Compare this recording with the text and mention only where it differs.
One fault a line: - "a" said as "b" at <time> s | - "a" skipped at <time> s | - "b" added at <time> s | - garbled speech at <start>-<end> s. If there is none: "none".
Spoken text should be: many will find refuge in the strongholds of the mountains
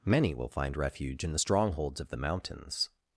none